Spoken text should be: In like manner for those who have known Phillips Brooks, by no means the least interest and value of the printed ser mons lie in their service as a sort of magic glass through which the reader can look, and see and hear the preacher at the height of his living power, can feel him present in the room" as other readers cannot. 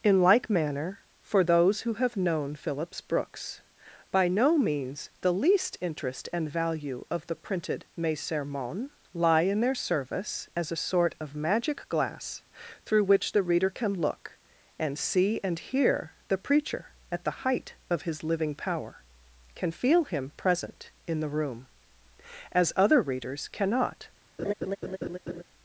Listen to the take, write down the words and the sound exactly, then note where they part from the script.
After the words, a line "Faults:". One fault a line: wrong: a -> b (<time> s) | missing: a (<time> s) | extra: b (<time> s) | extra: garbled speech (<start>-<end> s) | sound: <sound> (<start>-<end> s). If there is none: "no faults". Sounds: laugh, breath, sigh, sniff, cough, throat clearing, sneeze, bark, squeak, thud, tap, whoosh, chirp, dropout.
In like manner for those who have known Phillips Brooks, by no means the least interest and value of the printed mes sermons lie in their service as a sort of magic glass through which the reader can look, and see and hear the preacher at the height of his living power, can feel him present in the room" as other readers cannot.
Faults:
wrong: ser mons -> mes sermons (8.0 s)
sound: laugh (24.4-25.4 s)